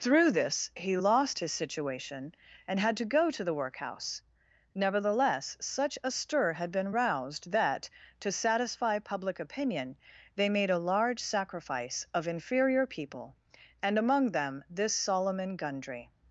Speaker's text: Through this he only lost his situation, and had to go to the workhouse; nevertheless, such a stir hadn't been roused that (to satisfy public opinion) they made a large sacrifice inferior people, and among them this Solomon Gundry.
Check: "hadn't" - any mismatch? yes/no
yes